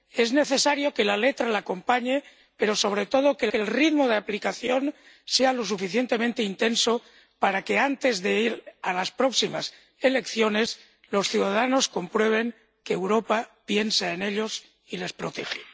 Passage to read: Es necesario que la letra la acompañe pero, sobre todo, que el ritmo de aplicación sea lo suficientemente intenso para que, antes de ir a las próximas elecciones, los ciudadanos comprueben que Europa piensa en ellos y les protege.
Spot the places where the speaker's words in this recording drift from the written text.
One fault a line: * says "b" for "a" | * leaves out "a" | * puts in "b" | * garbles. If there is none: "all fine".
* puts in "que"